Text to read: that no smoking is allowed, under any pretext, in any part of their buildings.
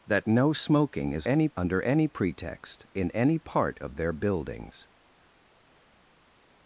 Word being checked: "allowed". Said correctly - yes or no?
no